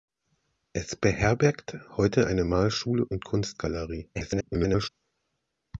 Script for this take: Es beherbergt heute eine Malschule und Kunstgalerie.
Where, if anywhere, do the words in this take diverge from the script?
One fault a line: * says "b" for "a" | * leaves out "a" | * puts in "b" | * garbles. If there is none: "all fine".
* garbles